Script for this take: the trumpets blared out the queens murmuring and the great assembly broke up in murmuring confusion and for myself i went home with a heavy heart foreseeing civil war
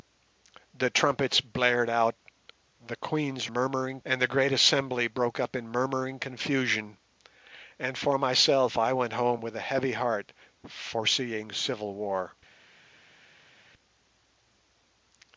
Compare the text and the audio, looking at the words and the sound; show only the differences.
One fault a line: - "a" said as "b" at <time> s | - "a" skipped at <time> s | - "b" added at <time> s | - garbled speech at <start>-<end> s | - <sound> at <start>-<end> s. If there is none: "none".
none